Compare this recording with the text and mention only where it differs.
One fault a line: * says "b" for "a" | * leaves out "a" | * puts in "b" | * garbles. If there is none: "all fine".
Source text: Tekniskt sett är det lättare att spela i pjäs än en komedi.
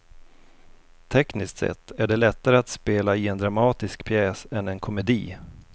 * puts in "en dramatisk"